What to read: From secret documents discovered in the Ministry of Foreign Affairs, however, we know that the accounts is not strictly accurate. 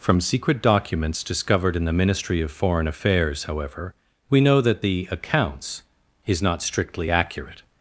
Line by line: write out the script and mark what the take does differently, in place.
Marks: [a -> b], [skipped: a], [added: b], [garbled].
From secret documents discovered in the Ministry of Foreign Affairs, however, we know that the accounts is not strictly accurate.